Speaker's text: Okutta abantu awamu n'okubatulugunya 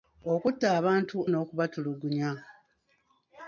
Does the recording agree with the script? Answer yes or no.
no